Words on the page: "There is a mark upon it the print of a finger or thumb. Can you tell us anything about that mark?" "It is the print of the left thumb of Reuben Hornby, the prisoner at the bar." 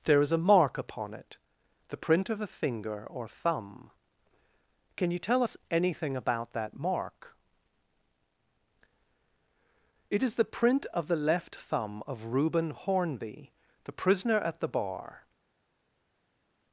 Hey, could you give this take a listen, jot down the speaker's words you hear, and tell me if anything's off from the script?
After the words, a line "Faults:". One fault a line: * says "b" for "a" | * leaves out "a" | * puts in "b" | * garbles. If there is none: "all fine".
"There is a mark upon it the print of a finger or thumb. Can you tell us anything about that mark?" "It is the print of the left thumb of Reuben Hornby, the prisoner at the bar."
Faults:
all fine